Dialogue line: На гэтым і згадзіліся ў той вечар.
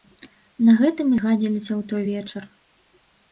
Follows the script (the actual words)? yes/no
yes